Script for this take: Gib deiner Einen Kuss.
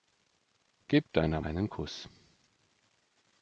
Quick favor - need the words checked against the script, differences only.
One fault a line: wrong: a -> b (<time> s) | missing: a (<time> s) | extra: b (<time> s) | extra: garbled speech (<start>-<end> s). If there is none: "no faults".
no faults